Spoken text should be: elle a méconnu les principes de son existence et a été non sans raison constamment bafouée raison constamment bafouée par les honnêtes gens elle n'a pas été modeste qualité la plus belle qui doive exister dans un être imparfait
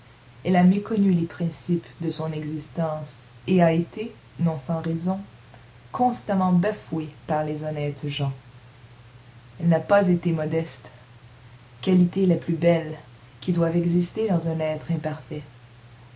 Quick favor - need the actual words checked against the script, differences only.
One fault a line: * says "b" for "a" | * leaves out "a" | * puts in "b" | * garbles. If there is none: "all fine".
* leaves out "raison constamment bafouée"